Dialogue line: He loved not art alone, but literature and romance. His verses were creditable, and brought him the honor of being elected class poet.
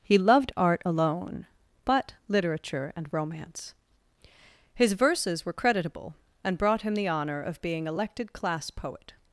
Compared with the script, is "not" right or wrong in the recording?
wrong